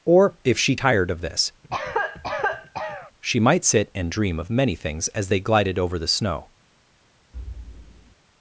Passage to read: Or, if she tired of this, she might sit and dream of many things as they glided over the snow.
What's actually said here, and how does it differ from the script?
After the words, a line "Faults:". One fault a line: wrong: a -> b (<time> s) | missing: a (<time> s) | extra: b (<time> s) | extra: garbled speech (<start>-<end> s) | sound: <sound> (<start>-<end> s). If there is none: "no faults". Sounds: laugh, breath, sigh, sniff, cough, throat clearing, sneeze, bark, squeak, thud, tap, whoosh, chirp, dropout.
Or, if she tired of this, she might sit and dream of many things as they glided over the snow.
Faults:
sound: cough (1.6-3.1 s)
sound: thud (7.3-8.2 s)